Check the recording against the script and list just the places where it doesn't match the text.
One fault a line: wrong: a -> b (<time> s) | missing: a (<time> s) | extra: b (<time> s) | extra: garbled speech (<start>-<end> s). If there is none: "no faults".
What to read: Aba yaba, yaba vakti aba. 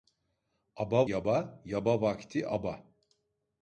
no faults